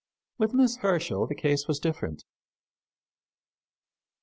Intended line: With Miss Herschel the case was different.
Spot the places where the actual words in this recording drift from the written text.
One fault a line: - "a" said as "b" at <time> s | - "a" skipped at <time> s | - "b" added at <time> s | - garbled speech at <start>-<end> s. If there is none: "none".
none